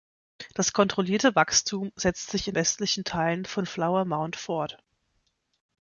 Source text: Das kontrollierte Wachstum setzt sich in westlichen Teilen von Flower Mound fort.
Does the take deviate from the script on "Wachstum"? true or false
false